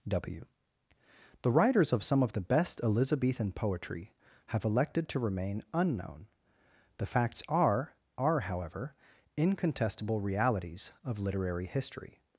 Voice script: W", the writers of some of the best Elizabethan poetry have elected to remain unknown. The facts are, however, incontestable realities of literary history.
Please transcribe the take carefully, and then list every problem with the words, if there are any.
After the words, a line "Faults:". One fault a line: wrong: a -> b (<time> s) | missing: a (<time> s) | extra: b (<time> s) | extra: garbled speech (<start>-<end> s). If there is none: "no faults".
W", the writers of some of the best Elizabethan poetry have elected to remain unknown. The facts are are, however, incontestable realities of literary history.
Faults:
extra: are (8.2 s)